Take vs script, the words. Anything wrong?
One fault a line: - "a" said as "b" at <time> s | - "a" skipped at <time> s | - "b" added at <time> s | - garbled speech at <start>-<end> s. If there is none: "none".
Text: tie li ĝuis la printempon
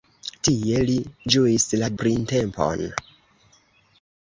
none